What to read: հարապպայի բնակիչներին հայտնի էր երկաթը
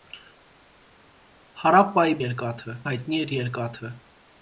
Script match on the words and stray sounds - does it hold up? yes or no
no